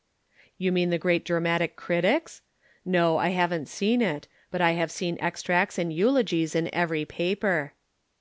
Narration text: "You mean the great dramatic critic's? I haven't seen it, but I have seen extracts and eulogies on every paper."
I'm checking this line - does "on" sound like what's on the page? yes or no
no